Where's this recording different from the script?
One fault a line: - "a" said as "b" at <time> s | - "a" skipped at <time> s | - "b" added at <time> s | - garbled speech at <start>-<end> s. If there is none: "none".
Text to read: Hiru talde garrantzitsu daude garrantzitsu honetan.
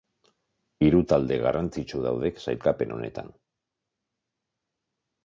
- "garrantzitsu" said as "sailkapen" at 2.5 s